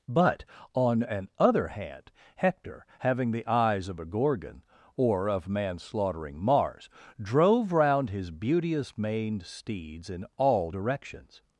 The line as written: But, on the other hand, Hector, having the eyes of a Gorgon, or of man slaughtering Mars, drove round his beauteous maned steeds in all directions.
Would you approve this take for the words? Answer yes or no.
no